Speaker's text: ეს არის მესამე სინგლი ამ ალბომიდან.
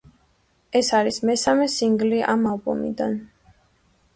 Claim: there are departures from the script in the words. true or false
false